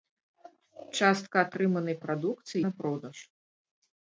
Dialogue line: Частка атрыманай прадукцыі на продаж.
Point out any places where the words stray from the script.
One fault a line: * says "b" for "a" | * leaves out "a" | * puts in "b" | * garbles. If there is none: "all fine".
all fine